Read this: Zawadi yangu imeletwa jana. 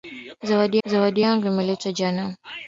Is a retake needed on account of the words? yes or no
yes